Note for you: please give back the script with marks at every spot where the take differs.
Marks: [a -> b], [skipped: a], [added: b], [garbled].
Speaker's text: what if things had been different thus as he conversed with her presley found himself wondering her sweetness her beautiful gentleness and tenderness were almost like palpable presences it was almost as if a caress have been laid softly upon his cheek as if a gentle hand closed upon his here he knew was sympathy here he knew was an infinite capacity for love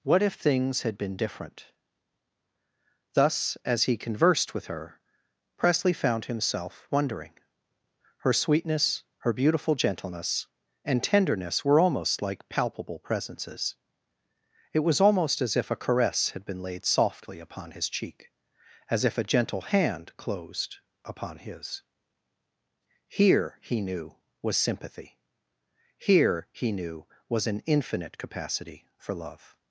what if things had been different thus as he conversed with her presley found himself wondering her sweetness her beautiful gentleness and tenderness were almost like palpable presences it was almost as if a caress [have -> had] been laid softly upon his cheek as if a gentle hand closed upon his here he knew was sympathy here he knew was an infinite capacity for love